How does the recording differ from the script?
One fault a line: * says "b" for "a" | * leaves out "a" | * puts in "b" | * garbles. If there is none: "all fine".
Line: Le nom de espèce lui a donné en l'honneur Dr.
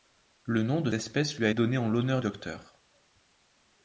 all fine